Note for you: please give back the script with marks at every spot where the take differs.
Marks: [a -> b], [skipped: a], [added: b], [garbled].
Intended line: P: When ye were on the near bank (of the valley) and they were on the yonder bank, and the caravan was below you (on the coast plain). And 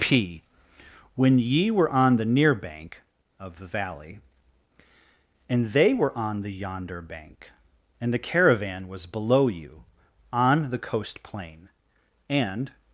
P: When ye were on the near bank (of the valley) and they were on the yonder bank, and the caravan was below you (on the coast plain). And